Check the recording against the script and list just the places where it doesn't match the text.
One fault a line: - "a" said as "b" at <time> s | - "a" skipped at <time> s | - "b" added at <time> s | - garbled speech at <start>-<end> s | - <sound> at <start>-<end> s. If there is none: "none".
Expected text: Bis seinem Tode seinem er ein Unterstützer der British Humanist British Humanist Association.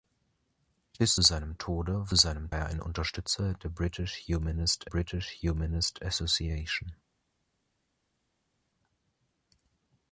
none